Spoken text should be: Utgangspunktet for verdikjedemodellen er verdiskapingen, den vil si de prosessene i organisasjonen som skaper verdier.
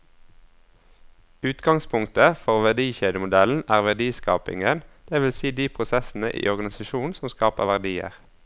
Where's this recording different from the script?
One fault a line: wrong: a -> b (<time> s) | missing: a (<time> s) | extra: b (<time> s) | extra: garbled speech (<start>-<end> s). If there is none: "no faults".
wrong: den -> det (5.1 s)